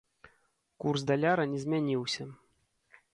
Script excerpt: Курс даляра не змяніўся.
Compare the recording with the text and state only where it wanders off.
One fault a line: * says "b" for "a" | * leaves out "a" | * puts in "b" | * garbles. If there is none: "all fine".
all fine